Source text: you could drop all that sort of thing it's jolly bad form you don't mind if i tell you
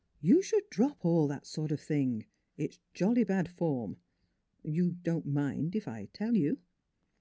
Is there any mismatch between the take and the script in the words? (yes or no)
yes